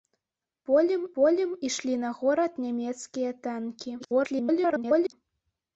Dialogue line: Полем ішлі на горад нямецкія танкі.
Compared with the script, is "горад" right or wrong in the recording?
right